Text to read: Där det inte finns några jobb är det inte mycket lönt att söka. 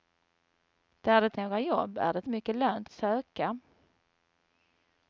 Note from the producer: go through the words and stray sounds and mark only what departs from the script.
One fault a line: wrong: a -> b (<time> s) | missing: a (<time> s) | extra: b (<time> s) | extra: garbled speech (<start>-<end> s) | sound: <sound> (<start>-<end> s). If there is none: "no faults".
missing: inte finns (1.4 s)
missing: inte (2.3 s)
missing: att (2.9 s)